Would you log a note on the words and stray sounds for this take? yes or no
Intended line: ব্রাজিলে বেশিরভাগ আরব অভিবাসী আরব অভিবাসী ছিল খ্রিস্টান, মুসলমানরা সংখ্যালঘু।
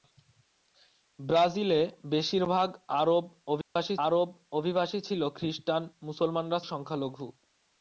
yes